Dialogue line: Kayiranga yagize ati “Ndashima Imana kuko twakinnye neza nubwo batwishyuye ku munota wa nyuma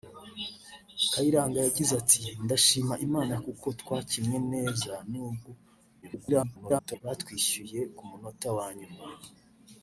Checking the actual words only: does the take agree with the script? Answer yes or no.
no